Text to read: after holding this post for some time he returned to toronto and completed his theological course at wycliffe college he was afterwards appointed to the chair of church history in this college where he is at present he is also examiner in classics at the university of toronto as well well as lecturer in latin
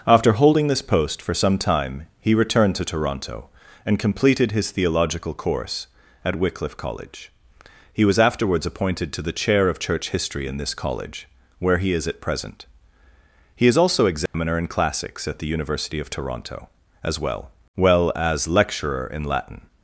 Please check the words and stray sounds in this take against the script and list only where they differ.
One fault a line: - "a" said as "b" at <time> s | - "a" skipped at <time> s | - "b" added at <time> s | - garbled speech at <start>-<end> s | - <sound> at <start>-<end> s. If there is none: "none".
- dropout at 14.3-14.3 s